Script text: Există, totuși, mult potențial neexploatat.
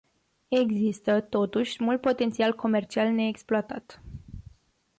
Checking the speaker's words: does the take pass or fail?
fail